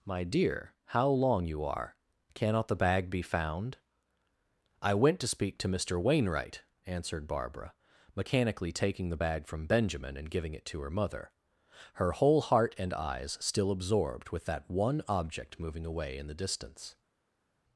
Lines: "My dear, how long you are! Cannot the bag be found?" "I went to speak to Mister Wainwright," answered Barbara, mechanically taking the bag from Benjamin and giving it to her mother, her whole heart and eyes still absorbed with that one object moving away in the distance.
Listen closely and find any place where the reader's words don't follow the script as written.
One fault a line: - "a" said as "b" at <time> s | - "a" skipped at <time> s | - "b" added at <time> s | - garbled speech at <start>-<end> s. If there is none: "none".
none